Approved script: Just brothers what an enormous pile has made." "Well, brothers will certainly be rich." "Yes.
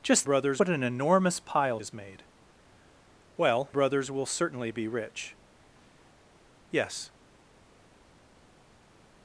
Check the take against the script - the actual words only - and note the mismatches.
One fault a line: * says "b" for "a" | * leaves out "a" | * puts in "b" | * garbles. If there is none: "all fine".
all fine